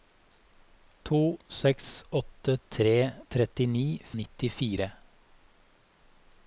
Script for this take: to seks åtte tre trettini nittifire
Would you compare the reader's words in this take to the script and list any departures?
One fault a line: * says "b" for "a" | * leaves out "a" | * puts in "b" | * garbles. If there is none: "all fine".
all fine